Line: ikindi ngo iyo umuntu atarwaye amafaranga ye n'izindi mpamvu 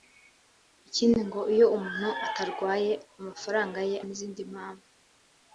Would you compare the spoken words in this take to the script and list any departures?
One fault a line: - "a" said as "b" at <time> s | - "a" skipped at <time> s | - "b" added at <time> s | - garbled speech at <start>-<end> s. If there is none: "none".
none